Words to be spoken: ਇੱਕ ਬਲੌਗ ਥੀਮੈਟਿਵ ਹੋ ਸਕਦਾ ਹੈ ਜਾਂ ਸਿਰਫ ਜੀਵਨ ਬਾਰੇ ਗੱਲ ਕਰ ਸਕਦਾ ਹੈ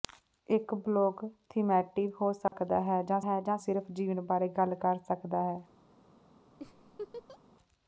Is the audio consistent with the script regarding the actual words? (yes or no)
no